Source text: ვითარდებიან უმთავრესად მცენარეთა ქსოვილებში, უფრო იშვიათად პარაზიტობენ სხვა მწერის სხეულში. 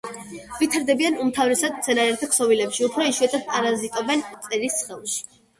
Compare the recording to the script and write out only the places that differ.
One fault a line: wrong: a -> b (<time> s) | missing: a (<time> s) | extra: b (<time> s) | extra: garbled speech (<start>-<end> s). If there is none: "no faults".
missing: სხვა (4.2 s)